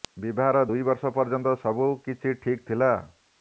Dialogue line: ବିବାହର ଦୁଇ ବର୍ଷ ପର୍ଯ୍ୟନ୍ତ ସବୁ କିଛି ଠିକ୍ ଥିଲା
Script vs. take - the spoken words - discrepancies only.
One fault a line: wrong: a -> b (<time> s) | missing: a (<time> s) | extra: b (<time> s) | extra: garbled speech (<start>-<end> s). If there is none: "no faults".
no faults